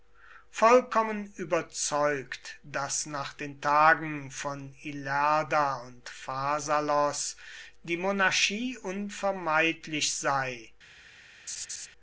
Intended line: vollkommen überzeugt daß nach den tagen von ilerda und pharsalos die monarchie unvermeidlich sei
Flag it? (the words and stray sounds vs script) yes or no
yes